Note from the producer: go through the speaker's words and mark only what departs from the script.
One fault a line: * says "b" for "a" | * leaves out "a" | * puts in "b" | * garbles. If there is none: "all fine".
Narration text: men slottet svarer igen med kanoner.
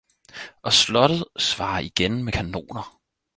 * says "og" for "men"